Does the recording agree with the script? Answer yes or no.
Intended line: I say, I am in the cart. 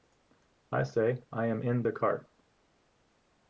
yes